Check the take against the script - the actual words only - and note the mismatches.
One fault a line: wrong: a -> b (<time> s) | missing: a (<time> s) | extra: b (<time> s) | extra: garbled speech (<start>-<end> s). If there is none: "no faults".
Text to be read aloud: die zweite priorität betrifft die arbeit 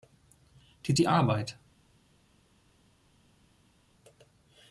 missing: zweite priorität betrifft (0.9 s)